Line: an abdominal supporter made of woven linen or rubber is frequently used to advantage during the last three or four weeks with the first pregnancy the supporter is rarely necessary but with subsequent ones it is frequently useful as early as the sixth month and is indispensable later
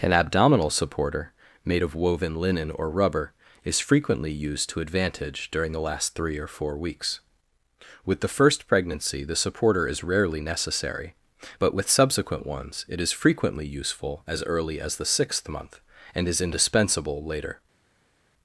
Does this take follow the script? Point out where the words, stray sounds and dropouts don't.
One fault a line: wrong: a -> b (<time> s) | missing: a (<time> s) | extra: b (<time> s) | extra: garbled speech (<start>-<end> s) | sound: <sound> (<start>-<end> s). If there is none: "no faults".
no faults